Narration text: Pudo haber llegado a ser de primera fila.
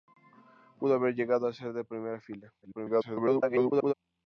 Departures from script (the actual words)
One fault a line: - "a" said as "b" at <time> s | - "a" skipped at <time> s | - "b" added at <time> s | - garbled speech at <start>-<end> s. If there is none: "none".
- garbled speech at 2.6-3.9 s